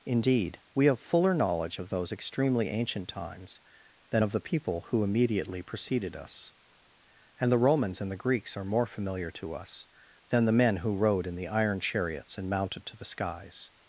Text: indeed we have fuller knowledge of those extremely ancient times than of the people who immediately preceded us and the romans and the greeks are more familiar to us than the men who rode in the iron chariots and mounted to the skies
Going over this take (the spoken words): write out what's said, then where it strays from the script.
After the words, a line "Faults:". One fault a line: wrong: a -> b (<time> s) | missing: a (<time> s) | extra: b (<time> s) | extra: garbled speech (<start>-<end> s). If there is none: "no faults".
indeed we have fuller knowledge of those extremely ancient times than of the people who immediately preceded us and the romans and the greeks are more familiar to us than the men who rode in the iron chariots and mounted to the skies
Faults:
no faults